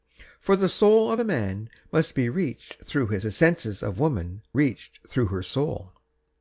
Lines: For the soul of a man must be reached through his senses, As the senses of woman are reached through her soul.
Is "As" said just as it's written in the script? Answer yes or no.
no